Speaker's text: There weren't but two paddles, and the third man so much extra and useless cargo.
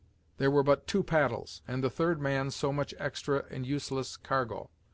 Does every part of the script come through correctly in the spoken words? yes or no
no